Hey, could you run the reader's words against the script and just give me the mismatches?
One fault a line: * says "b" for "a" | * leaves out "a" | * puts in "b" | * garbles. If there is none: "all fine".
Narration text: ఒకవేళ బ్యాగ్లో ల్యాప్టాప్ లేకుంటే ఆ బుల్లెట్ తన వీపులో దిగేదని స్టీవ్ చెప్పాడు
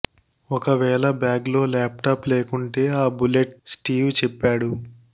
* leaves out "తన వీపులో దిగేదని"